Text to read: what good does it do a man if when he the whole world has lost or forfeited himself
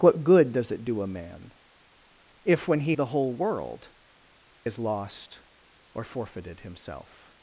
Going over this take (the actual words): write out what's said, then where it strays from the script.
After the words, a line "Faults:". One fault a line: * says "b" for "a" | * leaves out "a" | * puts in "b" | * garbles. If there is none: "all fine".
what good does it do a man if when he the whole world has lost or forfeited himself
Faults:
all fine